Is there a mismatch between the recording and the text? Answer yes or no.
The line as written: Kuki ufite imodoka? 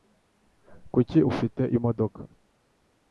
no